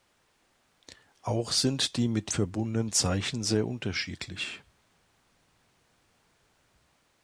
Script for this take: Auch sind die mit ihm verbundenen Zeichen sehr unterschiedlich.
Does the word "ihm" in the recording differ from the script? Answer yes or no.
yes